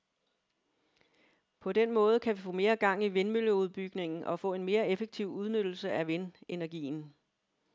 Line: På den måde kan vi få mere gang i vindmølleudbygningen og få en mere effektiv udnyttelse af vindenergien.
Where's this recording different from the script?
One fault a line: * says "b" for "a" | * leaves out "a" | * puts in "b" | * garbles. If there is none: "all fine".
all fine